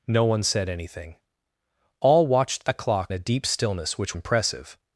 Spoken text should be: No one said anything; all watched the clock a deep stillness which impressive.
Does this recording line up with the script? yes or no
yes